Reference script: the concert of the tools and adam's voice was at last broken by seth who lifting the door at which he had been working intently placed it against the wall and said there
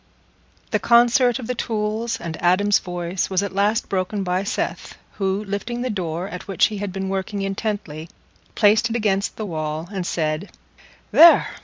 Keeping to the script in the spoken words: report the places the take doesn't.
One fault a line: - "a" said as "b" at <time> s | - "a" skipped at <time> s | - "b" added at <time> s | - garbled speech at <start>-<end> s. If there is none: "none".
none